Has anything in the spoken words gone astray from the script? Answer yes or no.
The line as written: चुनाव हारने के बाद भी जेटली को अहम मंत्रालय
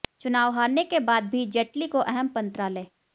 no